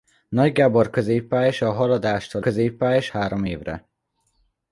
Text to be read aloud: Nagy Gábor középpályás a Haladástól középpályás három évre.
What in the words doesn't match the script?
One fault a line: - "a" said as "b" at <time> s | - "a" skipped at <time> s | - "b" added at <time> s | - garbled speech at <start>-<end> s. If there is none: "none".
none